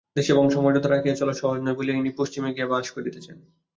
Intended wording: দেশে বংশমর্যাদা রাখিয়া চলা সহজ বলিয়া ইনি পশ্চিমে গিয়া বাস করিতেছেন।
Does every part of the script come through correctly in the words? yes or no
no